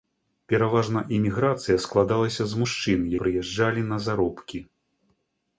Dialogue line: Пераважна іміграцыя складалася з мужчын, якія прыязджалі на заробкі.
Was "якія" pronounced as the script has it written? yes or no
no